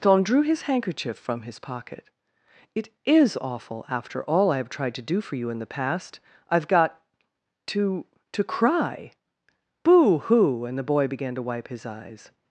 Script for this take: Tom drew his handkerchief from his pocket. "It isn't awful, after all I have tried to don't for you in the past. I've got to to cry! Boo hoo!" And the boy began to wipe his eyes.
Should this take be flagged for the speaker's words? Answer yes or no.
yes